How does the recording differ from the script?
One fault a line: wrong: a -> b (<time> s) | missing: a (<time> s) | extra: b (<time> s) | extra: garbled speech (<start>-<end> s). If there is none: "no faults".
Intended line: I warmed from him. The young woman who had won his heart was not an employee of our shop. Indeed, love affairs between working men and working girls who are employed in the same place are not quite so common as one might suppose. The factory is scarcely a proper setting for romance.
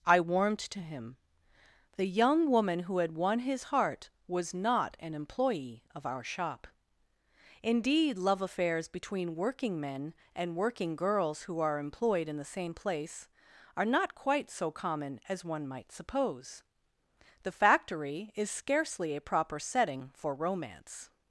wrong: from -> to (0.6 s)